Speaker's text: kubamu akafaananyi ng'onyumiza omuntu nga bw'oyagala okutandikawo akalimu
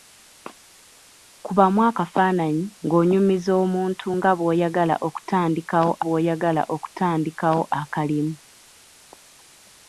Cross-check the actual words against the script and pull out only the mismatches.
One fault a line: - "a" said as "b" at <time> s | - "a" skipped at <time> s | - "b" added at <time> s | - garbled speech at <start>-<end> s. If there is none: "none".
- "bw'oyagala okutandikawo" added at 6.0 s